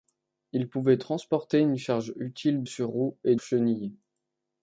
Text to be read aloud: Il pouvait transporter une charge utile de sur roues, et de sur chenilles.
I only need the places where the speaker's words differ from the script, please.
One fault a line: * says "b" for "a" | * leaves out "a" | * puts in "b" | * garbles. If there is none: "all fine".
* leaves out "de"
* leaves out "de sur"